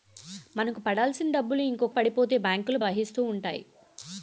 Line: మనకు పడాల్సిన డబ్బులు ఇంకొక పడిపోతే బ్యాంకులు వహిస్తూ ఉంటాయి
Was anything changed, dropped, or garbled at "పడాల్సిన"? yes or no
no